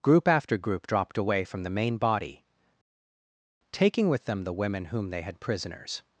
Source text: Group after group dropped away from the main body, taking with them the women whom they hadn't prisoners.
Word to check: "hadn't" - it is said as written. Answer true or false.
false